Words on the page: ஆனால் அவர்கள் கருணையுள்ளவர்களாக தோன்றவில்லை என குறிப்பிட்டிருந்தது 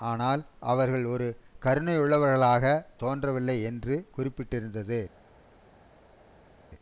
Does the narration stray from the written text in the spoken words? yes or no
yes